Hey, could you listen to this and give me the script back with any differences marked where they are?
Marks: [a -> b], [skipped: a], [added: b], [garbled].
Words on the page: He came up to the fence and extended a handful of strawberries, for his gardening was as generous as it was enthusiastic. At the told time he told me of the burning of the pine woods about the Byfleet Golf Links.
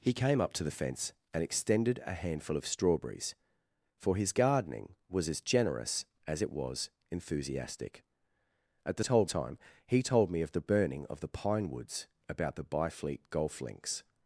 He came up to the fence and extended a handful of strawberries, for his gardening was as generous as it was enthusiastic. At the told time he told me of the burning of the pine woods about the Byfleet Golf Links.